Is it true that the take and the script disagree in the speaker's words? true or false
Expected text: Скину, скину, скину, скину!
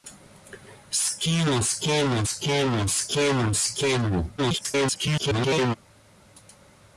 true